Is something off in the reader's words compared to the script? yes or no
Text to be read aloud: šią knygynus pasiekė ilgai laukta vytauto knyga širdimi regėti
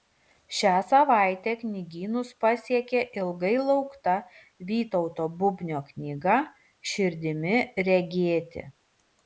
yes